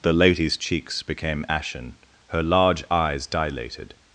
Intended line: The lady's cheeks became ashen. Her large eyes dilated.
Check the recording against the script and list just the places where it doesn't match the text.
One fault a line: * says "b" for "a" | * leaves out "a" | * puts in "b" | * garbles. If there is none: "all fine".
all fine